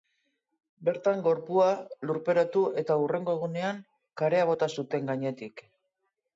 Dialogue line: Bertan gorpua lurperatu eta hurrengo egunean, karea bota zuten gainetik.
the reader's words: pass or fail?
pass